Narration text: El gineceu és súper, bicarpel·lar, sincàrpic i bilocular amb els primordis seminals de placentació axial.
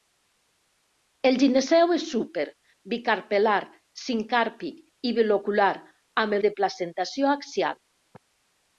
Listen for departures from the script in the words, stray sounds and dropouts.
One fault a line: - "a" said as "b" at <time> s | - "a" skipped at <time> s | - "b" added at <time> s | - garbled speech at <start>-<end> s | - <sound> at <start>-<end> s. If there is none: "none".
- "els primordis seminals" skipped at 6.4 s